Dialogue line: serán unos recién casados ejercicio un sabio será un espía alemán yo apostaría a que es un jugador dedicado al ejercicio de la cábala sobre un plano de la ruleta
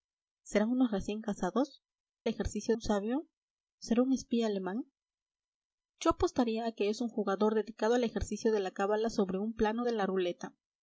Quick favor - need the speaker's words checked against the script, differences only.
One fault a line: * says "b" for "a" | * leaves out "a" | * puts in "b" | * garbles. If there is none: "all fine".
all fine